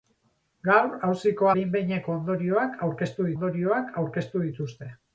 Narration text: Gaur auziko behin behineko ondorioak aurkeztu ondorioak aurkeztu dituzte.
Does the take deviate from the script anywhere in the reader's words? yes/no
no